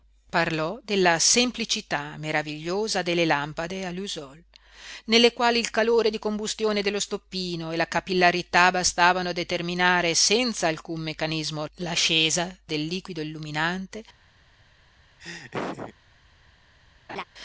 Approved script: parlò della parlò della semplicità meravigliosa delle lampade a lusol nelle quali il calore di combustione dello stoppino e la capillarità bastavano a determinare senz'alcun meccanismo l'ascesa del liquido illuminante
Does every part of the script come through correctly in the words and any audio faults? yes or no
no